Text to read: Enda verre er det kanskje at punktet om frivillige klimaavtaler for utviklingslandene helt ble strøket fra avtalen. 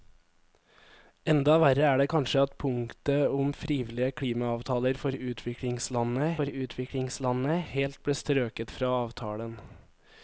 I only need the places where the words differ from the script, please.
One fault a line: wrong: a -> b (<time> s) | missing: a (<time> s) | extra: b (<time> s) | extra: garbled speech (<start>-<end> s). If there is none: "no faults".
extra: for utviklingslandene (6.4 s)